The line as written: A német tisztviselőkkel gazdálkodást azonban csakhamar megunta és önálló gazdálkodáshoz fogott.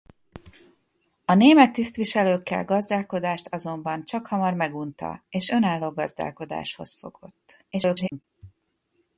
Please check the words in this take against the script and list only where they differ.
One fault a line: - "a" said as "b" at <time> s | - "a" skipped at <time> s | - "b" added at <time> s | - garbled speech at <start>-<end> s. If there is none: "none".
- garbled speech at 7.7-8.2 s